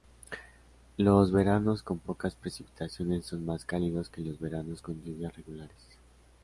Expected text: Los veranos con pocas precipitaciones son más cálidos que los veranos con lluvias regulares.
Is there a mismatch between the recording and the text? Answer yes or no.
no